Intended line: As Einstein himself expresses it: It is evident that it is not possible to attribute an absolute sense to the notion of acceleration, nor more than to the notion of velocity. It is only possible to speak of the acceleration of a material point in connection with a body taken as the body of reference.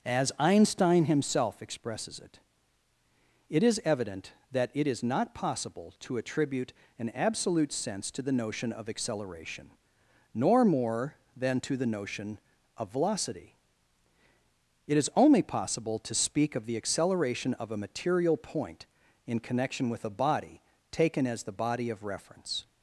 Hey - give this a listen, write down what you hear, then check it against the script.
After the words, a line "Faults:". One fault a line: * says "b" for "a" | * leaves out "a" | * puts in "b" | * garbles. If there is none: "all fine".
As Einstein himself expresses it: It is evident that it is not possible to attribute an absolute sense to the notion of acceleration, nor more than to the notion of velocity. It is only possible to speak of the acceleration of a material point in connection with a body taken as the body of reference.
Faults:
all fine